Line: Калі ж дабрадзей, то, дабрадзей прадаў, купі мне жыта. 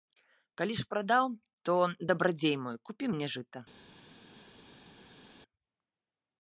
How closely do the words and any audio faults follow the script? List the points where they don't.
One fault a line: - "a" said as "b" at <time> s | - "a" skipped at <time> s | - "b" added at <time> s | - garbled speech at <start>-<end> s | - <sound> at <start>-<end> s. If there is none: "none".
- "дабрадзей" said as "прадаў" at 0.9 s
- "прадаў" said as "мой" at 2.6 s